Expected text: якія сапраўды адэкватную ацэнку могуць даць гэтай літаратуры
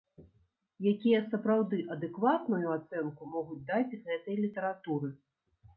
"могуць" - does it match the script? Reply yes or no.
yes